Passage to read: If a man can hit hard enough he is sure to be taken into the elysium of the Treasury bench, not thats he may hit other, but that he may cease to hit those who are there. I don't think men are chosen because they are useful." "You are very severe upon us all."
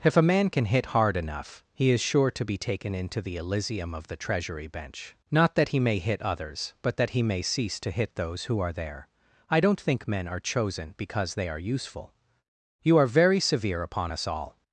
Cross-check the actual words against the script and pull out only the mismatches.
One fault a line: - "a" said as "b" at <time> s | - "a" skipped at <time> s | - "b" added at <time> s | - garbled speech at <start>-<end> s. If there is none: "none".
- "thats" said as "that" at 5.5 s
- "other" said as "others" at 6.2 s